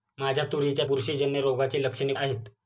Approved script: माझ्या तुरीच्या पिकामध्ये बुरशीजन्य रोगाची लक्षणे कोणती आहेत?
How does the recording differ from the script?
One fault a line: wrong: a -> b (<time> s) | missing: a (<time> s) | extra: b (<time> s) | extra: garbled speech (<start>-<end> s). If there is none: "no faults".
missing: पिकामध्ये (0.8 s)
missing: कोणती (2.1 s)